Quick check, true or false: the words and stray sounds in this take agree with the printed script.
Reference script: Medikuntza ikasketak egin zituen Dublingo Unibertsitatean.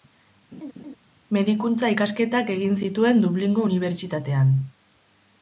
false